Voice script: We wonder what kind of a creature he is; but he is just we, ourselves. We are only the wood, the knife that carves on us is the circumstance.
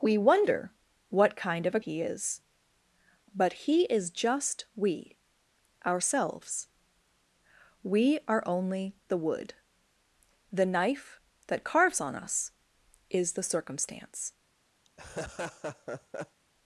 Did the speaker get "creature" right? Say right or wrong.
wrong